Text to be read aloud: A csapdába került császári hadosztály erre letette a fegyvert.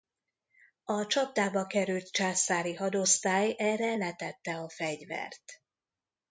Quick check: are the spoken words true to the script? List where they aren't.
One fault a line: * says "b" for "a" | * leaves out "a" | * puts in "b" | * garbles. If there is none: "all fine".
all fine